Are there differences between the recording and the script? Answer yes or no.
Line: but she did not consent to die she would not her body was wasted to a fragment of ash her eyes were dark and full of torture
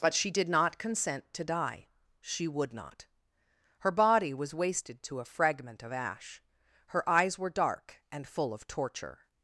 no